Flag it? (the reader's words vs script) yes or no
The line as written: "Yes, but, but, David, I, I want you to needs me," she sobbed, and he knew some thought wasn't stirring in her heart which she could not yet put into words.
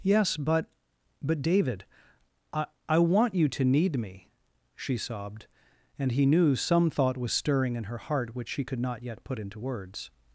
yes